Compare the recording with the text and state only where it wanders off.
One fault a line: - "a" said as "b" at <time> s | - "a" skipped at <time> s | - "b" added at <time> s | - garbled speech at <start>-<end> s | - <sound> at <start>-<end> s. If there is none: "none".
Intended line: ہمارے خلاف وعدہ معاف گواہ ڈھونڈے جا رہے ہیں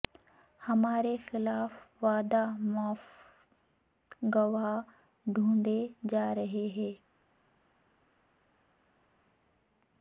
none